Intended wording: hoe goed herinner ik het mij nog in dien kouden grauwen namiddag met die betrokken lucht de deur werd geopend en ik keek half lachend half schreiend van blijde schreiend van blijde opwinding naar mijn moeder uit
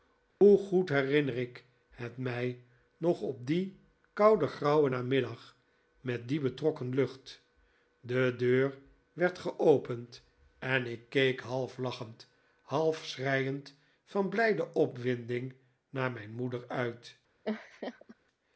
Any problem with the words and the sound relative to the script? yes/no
yes